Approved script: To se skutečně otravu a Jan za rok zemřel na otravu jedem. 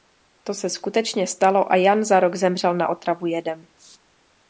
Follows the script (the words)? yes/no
no